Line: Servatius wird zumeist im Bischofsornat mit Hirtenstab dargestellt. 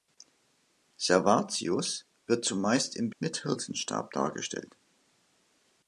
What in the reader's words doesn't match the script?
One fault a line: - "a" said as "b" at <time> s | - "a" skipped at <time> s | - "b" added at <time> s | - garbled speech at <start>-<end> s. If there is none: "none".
- "Bischofsornat" skipped at 3.1 s